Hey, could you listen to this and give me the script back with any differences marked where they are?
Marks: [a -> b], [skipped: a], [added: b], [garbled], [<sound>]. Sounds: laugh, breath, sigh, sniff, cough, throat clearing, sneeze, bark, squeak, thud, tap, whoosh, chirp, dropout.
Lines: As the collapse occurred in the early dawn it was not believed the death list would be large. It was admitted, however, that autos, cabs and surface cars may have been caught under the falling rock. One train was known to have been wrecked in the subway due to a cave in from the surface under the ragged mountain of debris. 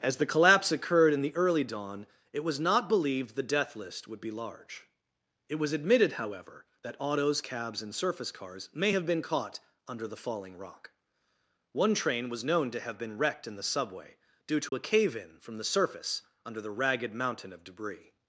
As the collapse occurred in the early dawn it was not believed the death list would be large. It was admitted, however, that autos, cabs and surface cars may have been caught under the falling rock. One train was known to have been wrecked in the subway due to [dropout] a cave in from the surface under the ragged mountain of debris.